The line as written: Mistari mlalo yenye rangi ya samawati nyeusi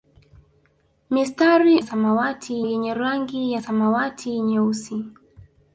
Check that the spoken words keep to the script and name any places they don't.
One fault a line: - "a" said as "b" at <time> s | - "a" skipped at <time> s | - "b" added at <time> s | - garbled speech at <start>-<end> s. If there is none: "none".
- "mlalo" said as "samawati" at 1.8 s